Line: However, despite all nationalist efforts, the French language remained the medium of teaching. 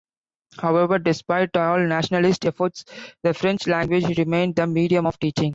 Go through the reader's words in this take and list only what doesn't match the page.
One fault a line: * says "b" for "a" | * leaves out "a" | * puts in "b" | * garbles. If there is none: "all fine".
all fine